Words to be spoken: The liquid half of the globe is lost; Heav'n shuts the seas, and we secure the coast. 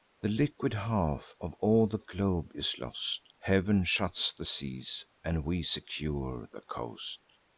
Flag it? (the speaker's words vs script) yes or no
yes